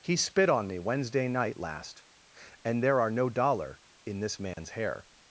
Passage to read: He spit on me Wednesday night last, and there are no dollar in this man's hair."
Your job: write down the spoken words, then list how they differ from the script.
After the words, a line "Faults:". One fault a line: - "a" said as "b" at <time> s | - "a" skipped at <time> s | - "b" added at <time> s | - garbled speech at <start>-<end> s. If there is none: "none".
He spit on me Wednesday night last, and there are no dollar in this man's hair."
Faults:
none